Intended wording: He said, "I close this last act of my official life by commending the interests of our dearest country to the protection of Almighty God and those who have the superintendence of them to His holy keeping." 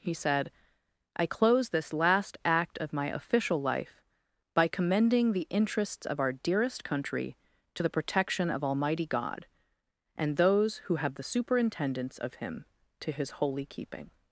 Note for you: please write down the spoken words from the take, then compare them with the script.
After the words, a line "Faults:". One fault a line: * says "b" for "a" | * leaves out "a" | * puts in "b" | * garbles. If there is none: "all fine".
He said, "I close this last act of my official life by commending the interests of our dearest country to the protection of Almighty God and those who have the superintendence of him to His holy keeping."
Faults:
* says "him" for "them"